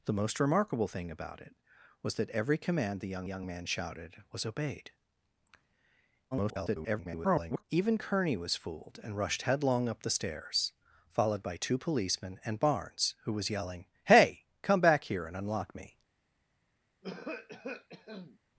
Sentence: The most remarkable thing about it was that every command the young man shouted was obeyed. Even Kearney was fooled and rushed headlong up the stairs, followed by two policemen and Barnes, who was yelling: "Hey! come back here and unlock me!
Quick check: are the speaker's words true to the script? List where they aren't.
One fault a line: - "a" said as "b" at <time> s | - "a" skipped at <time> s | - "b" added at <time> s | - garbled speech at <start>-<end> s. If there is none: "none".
- "young" added at 3.3 s
- garbled speech at 6.3-7.6 s